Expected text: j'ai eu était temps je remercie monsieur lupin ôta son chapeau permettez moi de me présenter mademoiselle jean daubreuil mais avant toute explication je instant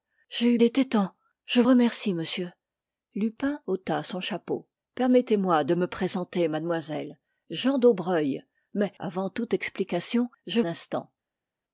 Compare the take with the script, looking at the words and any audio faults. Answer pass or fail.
pass